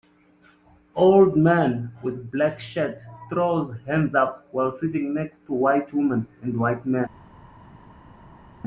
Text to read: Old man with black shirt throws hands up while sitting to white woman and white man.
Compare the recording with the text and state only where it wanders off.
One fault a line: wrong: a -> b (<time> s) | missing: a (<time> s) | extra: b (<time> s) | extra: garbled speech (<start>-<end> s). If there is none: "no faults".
extra: next (5.1 s)